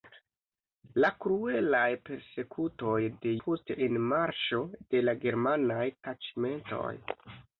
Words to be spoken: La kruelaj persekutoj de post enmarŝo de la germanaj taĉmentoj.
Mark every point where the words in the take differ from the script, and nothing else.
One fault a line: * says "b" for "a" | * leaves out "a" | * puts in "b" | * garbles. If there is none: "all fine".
all fine